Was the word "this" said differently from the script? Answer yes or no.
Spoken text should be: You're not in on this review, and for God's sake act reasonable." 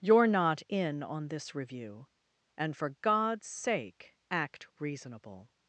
no